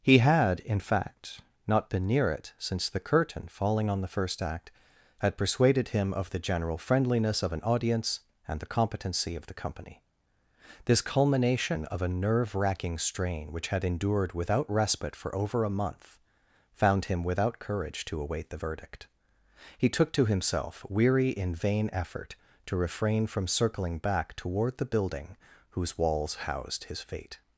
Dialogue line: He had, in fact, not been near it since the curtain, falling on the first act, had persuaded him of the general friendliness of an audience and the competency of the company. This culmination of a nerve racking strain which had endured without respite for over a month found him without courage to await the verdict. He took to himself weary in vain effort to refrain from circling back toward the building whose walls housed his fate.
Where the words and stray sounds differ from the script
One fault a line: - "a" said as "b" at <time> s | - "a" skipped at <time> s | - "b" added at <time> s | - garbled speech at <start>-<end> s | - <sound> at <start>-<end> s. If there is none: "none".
none